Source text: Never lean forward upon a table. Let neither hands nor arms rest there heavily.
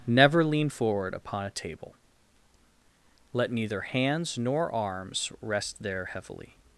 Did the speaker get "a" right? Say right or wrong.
right